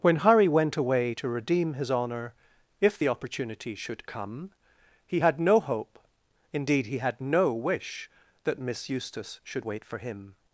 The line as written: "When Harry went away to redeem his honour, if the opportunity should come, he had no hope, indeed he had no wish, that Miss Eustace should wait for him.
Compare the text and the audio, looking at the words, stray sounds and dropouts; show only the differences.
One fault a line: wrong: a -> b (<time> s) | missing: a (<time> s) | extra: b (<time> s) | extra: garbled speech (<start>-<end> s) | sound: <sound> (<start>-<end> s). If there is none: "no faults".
no faults